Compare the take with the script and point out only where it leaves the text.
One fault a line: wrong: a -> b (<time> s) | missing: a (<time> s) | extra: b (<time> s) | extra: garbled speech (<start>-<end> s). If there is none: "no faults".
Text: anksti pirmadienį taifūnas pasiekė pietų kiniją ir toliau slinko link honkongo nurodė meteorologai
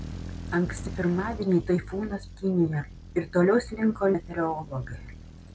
missing: pasiekė pietų (2.2 s)
missing: link honkongo nurodė (4.1 s)